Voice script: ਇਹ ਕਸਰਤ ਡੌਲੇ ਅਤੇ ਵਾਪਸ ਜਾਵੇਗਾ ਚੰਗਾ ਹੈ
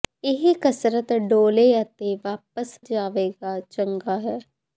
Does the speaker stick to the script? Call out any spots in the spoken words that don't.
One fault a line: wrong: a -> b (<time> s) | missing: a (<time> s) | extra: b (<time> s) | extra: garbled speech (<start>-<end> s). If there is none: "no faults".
no faults